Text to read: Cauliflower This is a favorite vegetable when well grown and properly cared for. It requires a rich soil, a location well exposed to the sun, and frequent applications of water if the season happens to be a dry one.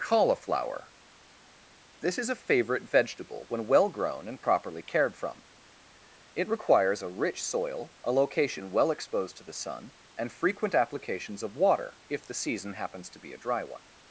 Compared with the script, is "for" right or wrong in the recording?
wrong